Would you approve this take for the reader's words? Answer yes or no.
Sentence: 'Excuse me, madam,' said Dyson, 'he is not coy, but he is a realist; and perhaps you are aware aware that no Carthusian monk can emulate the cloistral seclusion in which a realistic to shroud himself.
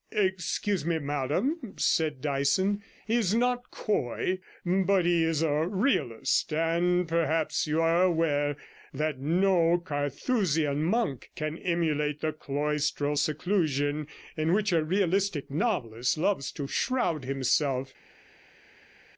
no